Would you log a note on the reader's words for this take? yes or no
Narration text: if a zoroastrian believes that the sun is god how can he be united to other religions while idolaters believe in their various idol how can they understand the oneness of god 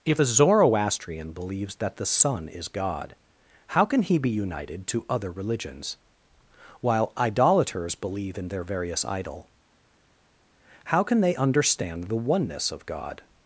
no